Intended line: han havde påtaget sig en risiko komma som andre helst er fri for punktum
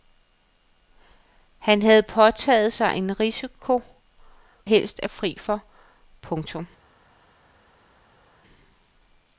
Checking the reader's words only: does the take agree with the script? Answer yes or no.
no